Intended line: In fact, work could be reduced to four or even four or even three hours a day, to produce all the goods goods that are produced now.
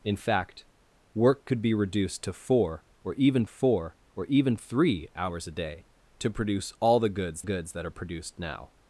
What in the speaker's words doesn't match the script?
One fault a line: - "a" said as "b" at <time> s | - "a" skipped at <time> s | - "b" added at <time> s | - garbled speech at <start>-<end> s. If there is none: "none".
none